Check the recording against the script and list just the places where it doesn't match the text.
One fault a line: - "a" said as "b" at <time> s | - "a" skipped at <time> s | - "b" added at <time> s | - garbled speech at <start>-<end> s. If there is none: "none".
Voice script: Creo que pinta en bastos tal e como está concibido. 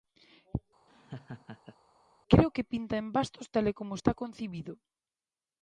none